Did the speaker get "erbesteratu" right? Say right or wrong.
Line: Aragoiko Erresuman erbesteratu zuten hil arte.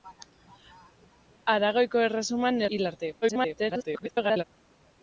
wrong